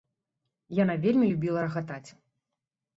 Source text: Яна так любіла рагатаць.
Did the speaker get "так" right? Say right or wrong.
wrong